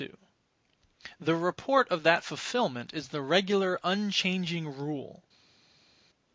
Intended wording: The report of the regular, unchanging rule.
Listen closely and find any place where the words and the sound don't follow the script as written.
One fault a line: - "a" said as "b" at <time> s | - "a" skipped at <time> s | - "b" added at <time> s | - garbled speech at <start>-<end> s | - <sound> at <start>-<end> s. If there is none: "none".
- "that fulfilment is" added at 2.0 s